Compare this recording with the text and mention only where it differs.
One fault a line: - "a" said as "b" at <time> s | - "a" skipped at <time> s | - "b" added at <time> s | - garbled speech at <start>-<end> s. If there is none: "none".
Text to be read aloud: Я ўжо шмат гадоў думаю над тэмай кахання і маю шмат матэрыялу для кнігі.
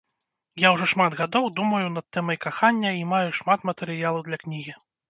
none